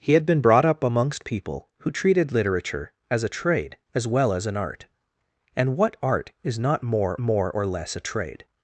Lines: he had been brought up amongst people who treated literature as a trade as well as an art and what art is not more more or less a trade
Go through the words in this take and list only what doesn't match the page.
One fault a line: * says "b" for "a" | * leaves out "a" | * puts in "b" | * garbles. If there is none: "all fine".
all fine